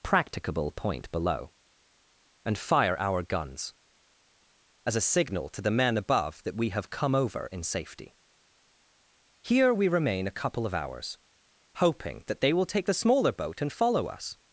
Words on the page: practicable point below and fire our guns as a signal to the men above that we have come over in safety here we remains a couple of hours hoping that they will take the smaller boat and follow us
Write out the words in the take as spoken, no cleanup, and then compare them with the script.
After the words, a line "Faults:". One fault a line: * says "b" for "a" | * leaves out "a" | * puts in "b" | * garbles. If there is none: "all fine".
practicable point below and fire our guns as a signal to the men above that we have come over in safety here we remain a couple of hours hoping that they will take the smaller boat and follow us
Faults:
* says "remain" for "remains"